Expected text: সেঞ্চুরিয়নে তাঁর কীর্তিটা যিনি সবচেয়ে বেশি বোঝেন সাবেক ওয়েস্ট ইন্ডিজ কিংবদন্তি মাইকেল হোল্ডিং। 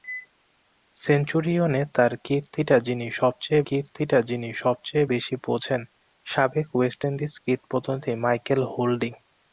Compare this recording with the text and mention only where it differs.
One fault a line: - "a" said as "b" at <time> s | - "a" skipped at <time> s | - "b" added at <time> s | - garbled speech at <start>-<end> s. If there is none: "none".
- "কীর্তিটা যিনি সবচেয়ে" added at 3.7 s